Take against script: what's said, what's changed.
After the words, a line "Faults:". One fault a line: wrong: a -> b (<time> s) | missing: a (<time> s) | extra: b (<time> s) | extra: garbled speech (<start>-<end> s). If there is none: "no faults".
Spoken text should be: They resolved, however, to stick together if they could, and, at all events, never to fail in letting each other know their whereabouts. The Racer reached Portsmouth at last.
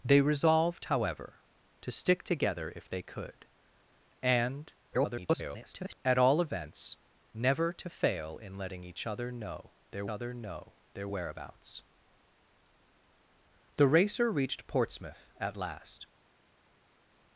They resolved, however, to stick together if they could, and, [garbled] at all events, never to fail in letting each other know their other know their whereabouts. The Racer reached Portsmouth at last.
Faults:
extra: garbled speech (4.9-6.0 s)
extra: other know their (10.1 s)